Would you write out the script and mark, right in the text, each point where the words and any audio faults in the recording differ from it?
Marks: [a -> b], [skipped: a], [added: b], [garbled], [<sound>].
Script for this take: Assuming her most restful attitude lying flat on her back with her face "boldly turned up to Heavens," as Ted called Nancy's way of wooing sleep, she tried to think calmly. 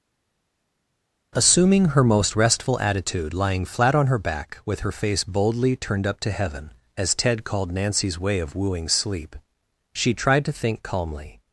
Assuming her most restful attitude lying flat on her back with her face "boldly turned up to [Heavens," -> Heaven] as Ted called Nancy's way of wooing sleep, she tried to think calmly.